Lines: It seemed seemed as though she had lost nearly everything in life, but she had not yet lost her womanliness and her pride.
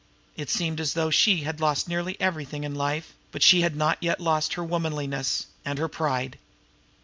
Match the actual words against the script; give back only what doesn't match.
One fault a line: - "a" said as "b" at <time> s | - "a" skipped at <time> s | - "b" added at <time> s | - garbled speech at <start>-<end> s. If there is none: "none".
- "seemed" skipped at 0.8 s